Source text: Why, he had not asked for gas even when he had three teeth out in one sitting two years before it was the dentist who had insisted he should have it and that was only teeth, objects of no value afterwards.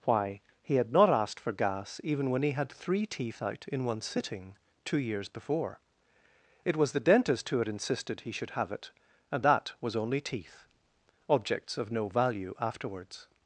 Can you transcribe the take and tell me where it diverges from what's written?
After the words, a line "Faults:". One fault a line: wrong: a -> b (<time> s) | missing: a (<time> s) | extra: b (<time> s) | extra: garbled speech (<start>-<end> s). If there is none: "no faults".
Why, he had not asked for gas even when he had three teeth out in one sitting two years before it was the dentist who had insisted he should have it and that was only teeth, objects of no value afterwards.
Faults:
no faults